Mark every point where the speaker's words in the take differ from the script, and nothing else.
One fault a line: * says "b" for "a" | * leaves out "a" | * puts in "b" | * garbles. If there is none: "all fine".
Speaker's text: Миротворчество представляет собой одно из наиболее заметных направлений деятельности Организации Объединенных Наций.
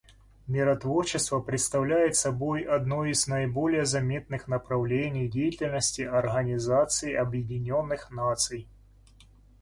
all fine